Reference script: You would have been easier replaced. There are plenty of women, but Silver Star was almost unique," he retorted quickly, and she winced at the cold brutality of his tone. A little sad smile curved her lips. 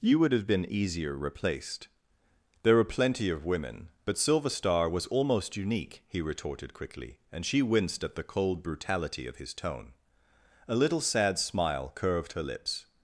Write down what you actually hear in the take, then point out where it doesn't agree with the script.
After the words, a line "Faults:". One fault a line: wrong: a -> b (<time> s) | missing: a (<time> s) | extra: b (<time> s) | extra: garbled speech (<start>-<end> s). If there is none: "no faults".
You would have been easier replaced. There were plenty of women, but Silver Star was almost unique," he retorted quickly, and she winced at the cold brutality of his tone. A little sad smile curved her lips.
Faults:
wrong: are -> were (2.8 s)